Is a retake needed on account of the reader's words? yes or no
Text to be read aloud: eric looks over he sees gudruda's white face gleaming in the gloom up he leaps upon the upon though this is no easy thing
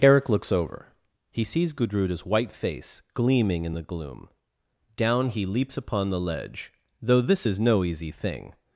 yes